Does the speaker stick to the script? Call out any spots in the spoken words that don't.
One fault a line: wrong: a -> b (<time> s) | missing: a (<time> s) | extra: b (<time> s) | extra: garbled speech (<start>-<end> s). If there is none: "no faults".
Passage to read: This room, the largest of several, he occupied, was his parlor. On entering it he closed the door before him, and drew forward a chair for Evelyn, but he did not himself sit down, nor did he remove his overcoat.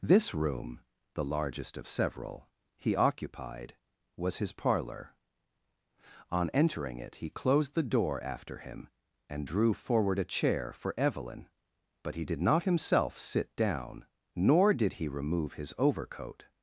wrong: before -> after (8.2 s)